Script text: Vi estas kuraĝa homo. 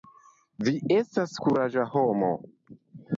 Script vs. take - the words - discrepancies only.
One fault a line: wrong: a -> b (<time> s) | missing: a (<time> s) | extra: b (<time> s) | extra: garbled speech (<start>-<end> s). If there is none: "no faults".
no faults